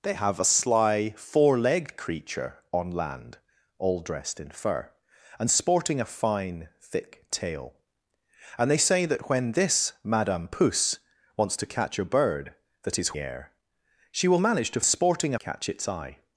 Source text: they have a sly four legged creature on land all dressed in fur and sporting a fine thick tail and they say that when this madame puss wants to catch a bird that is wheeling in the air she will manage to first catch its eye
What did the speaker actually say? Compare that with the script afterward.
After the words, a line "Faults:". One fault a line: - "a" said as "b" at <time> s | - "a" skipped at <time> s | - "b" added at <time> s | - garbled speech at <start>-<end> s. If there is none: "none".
they have a sly four legged creature on land all dressed in fur and sporting a fine thick tail and they say that when this madame puss wants to catch a bird that is air she will manage to sporting catch its eye
Faults:
- "wheeling in the" skipped at 13.2 s
- "first" said as "sporting" at 14.8 s